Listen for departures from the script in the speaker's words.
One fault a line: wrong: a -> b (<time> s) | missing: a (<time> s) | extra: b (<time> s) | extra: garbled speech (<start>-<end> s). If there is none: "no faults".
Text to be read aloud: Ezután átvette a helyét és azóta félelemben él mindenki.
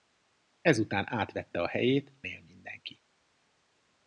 missing: és azóta félelemben (2.1 s)